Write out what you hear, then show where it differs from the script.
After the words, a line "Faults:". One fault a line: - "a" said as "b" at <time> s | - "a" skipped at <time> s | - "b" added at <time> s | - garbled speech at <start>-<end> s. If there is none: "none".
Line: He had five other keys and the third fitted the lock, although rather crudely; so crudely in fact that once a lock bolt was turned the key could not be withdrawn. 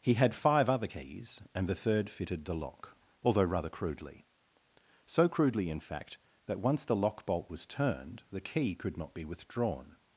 He had five other keys and the third fitted the lock, although rather crudely; so crudely in fact that once the lock bolt was turned the key could not be withdrawn.
Faults:
- "a" said as "the" at 6.8 s